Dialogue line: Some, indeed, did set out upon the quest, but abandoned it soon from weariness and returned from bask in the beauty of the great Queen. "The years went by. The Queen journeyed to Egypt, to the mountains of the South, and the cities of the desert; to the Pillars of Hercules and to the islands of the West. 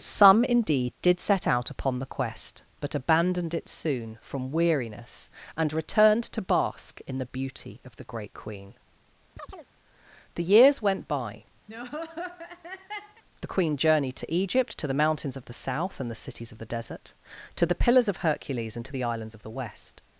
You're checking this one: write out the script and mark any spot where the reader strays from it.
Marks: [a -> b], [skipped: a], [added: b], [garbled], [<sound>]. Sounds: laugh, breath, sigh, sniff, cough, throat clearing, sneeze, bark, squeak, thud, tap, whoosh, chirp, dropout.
Some, indeed, did set out upon the quest, but abandoned it soon from weariness and returned [from -> to] bask in the beauty of the great Queen. [chirp] "The years went by. [laugh] The Queen journeyed to Egypt, to the mountains of the South, and the cities of the desert; to the Pillars of Hercules and to the islands of the West.